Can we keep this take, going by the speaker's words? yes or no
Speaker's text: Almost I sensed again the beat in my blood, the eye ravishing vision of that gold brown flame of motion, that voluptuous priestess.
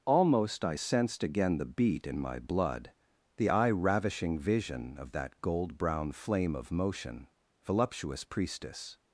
no